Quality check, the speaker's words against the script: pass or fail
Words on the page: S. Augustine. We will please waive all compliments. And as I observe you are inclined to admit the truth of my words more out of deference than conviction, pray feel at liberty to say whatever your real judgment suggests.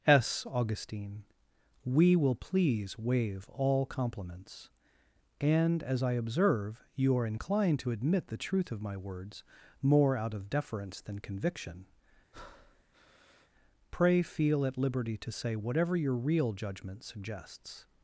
pass